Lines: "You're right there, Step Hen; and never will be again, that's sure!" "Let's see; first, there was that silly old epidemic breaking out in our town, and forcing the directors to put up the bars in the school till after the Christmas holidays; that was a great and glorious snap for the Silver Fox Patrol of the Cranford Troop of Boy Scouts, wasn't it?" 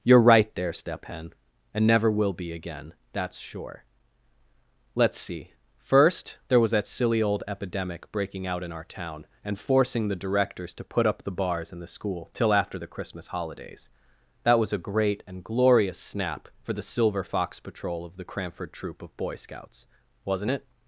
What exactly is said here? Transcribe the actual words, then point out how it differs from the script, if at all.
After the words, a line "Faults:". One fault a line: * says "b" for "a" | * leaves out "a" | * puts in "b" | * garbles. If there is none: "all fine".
"You're right there, Step Hen; and never will be again, that's sure!" "Let's see; first, there was that silly old epidemic breaking out in our town, and forcing the directors to put up the bars in the school till after the Christmas holidays; that was a great and glorious snap for the Silver Fox Patrol of the Cranford Troop of Boy Scouts, wasn't it?"
Faults:
all fine